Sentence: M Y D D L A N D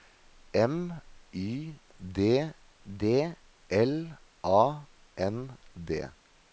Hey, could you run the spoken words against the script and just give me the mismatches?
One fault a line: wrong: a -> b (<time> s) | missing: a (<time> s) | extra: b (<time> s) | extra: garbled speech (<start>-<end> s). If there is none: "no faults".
no faults